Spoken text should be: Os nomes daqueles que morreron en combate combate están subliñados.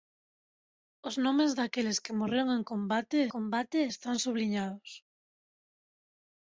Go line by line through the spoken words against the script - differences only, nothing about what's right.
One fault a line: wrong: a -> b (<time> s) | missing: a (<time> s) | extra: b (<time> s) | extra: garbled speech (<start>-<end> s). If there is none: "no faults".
no faults